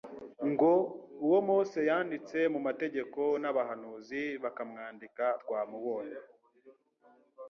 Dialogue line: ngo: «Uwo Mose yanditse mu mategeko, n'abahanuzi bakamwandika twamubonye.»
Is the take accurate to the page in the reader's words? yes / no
yes